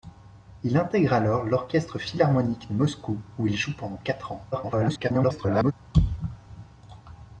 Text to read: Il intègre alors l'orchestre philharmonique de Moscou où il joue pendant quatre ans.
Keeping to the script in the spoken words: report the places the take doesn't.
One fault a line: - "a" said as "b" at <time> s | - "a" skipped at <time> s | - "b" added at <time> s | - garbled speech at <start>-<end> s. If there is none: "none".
- garbled speech at 4.5-5.7 s